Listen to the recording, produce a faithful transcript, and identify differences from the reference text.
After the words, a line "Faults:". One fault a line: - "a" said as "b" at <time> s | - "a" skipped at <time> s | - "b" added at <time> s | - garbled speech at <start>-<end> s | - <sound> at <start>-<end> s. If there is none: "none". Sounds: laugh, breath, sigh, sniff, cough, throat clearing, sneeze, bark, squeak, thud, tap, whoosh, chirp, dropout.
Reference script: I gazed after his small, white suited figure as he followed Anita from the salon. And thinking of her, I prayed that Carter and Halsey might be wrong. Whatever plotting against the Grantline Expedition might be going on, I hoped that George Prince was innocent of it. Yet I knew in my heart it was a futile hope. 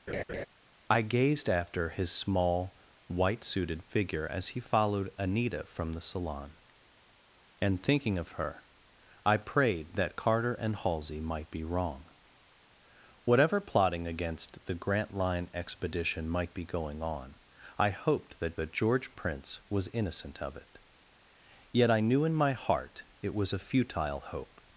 I gazed after his small, white suited figure as he followed Anita from the salon. And thinking of her, I prayed that Carter and Halsey might be wrong. Whatever plotting against the Grantline Expedition might be going on, I hoped that that George Prince was innocent of it. Yet I knew in my heart it was a futile hope.
Faults:
- laugh at 0.1-0.5 s
- "that" added at 18.5 s